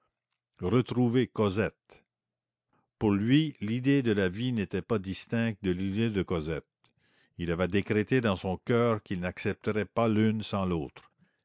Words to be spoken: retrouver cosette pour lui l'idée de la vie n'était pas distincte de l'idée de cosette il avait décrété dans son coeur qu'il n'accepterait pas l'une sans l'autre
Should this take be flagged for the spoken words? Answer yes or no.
no